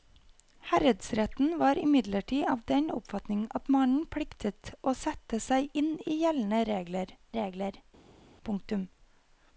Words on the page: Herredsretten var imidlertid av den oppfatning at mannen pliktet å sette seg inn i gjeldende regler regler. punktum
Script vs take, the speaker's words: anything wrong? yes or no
no